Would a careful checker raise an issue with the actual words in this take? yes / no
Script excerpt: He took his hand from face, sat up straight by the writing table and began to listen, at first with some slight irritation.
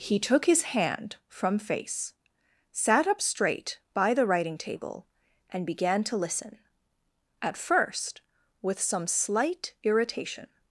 no